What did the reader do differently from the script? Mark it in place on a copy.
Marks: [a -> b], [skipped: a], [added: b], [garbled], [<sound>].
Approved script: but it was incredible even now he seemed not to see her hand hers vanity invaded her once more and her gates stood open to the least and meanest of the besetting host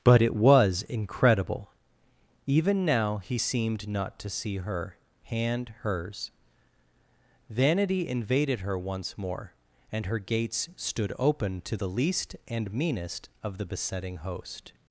but it was incredible even now he seemed not to see her hand hers vanity invaded her once more and her gates stood open to the least and meanest of the besetting host